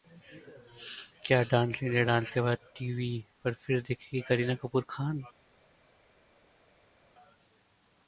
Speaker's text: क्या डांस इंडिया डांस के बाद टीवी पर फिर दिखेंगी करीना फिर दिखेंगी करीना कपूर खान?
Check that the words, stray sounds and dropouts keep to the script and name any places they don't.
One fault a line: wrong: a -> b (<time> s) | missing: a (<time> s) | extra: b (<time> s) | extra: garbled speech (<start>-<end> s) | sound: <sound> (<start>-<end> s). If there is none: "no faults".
missing: फिर दिखेंगी करीना (4.6 s)